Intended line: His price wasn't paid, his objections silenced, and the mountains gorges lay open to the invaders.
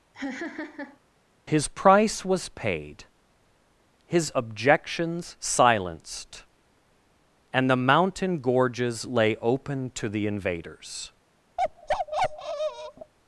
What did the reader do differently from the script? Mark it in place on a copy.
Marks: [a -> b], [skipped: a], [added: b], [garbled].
His price [wasn't -> was] paid, his objections silenced, and the [mountains -> mountain] gorges lay open to the invaders.